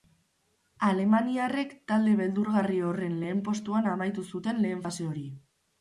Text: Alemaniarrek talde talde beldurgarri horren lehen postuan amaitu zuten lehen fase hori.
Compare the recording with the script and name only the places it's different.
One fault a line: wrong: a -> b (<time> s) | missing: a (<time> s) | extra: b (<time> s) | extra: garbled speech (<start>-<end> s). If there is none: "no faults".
missing: talde (2.2 s)